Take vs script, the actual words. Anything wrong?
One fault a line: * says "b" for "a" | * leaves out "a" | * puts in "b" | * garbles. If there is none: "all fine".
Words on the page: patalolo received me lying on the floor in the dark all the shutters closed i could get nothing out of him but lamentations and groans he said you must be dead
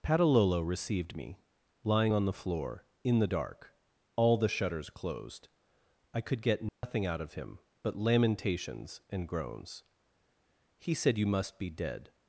all fine